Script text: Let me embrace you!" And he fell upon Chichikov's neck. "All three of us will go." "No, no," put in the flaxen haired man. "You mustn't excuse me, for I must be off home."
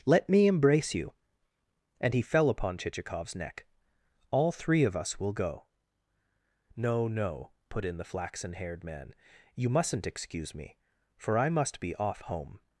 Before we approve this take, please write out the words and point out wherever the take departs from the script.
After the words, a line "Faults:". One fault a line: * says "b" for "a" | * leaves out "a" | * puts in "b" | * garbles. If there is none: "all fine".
Let me embrace you!" And he fell upon Chichikov's neck. "All three of us will go." "No, no," put in the flaxen haired man. "You mustn't excuse me, for I must be off home."
Faults:
all fine